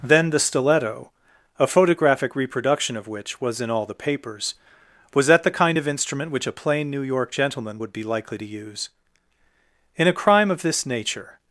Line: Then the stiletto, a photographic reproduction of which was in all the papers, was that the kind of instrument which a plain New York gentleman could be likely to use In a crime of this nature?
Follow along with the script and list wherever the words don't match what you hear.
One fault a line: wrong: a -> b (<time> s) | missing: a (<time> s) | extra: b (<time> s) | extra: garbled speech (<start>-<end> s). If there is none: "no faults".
wrong: could -> would (7.8 s)